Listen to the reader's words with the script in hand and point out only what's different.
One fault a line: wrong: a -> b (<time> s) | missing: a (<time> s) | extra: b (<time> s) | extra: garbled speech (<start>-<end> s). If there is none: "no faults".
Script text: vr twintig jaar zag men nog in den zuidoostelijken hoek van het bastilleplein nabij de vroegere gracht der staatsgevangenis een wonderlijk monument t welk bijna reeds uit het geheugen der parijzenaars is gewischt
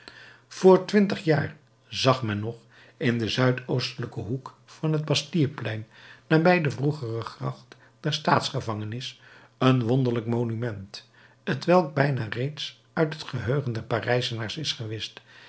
no faults